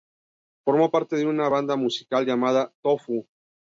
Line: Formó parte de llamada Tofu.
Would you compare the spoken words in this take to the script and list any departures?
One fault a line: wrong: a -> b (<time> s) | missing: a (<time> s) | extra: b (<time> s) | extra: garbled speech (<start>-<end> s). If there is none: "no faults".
extra: una banda musical (1.3 s)